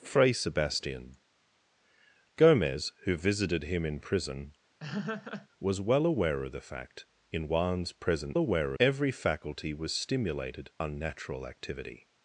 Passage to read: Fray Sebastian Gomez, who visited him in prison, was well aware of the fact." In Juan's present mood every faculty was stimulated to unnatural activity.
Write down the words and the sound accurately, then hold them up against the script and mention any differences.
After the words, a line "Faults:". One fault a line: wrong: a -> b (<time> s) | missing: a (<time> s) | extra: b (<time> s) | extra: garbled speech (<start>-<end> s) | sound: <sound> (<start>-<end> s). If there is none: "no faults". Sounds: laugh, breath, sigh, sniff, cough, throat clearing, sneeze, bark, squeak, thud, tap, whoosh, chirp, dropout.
Fray Sebastian Gomez, who visited him in prison, was well aware of the fact." In Juan's present aware every faculty was stimulated unnatural activity.
Faults:
sound: laugh (4.8-5.5 s)
wrong: mood -> aware (8.4 s)
missing: to (10.7 s)